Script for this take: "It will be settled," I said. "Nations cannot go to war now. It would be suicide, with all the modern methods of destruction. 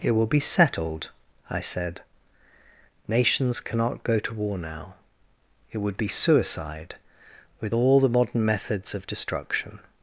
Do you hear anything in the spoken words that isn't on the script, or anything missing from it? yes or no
no